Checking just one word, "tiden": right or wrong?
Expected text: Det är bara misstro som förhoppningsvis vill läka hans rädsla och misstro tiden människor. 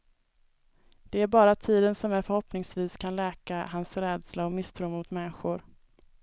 wrong